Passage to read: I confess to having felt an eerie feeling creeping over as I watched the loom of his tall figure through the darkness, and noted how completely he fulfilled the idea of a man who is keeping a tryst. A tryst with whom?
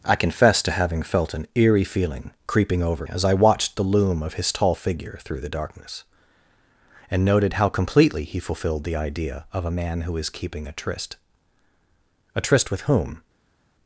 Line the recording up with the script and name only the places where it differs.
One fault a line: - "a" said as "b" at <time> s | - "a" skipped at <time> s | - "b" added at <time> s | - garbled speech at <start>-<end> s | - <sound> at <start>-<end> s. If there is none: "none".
none